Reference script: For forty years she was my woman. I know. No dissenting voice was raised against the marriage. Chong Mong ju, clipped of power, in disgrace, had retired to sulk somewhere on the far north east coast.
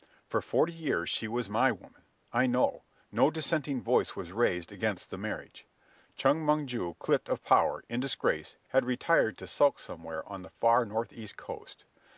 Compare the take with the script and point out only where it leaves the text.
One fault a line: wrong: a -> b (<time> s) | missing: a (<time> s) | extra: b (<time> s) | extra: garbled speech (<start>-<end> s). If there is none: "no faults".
no faults